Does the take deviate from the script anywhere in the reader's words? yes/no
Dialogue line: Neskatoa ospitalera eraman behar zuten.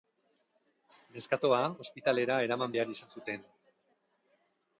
yes